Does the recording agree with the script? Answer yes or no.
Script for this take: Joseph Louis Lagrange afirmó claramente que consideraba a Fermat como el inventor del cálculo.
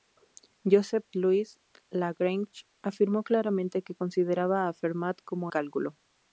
no